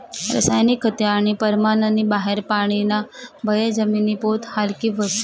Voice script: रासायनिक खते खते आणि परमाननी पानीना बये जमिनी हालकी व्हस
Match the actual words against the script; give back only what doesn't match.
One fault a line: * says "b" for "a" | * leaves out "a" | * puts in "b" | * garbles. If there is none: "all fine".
* leaves out "खते"
* puts in "बाहेर"
* puts in "पोत"